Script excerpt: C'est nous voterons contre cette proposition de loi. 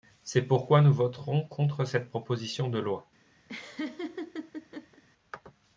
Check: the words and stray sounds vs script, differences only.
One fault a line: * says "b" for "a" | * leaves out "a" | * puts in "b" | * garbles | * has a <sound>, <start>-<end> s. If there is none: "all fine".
* puts in "pourquoi"
* has a laugh, 3.5-5.0 s